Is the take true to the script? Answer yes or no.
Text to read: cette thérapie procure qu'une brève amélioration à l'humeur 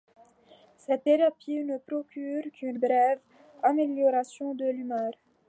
no